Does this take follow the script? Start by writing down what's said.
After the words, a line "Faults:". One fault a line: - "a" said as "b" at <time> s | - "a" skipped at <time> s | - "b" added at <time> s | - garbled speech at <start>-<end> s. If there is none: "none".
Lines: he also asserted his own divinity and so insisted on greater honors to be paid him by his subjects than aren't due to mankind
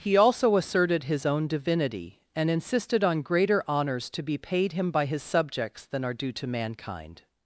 he also asserted his own divinity and insisted on greater honors to be paid him by his subjects than are due to mankind
Faults:
- "so" skipped at 2.5 s
- "aren't" said as "are" at 6.0 s